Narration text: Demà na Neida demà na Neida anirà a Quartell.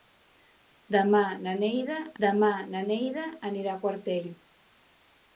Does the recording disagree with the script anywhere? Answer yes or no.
no